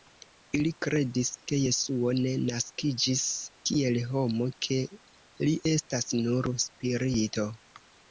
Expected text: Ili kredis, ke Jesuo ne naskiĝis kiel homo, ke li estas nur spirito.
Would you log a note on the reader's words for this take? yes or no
no